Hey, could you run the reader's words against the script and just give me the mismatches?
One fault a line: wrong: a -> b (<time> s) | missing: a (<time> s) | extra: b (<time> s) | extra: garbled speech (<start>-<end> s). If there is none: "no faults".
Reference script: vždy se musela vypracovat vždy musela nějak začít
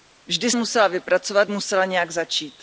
missing: se (0.5 s)
missing: vždy (1.5 s)